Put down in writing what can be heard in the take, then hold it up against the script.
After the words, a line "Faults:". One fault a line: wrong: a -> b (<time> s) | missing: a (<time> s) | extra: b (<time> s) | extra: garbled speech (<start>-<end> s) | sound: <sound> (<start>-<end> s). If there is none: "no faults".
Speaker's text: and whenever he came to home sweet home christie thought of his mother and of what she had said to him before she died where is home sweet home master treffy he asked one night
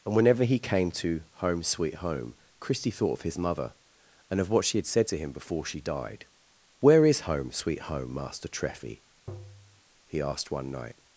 and whenever he came to home sweet home christie thought of his mother and of what she had said to him before she died where is home sweet home master treffy he asked one night
Faults:
sound: tap (9.3-9.8 s)